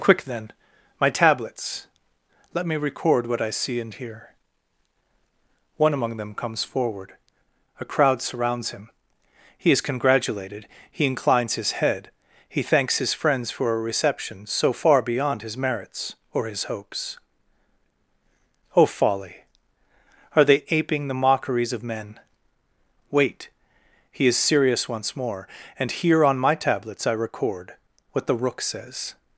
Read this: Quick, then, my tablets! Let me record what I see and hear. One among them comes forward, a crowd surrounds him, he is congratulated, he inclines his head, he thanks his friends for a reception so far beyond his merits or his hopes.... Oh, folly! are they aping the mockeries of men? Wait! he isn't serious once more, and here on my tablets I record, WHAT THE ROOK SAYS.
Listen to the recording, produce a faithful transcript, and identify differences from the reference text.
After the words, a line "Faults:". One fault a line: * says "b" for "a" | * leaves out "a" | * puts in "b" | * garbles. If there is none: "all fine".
Quick, then, my tablets! Let me record what I see and hear. One among them comes forward, a crowd surrounds him, he is congratulated, he inclines his head, he thanks his friends for a reception so far beyond his merits or his hopes.... Oh, folly! are they aping the mockeries of men? Wait! he is serious once more, and here on my tablets I record, WHAT THE ROOK SAYS.
Faults:
* says "is" for "isn't"